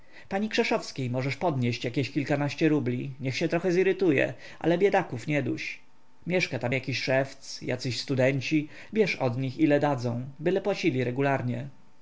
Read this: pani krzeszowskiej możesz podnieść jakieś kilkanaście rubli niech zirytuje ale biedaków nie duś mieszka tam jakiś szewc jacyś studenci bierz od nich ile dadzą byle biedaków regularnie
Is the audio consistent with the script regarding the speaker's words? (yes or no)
no